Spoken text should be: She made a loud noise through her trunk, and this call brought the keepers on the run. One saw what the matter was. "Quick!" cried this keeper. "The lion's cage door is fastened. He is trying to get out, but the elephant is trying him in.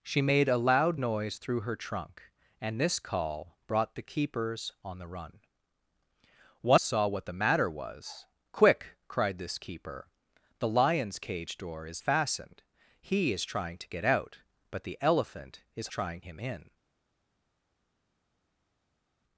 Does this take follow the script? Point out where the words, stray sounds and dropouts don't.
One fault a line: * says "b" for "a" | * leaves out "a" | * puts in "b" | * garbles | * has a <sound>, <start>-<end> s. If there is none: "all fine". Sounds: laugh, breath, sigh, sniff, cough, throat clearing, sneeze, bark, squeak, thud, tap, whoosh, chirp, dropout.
all fine